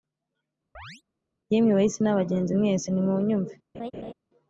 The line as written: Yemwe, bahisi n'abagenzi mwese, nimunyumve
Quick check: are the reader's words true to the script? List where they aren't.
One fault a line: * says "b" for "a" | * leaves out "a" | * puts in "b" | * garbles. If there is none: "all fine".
all fine